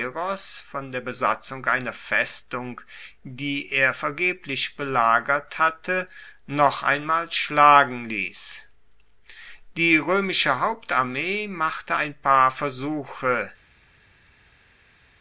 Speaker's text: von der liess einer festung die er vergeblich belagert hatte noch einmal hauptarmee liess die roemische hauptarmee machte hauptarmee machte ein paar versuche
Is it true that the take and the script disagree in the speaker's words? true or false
true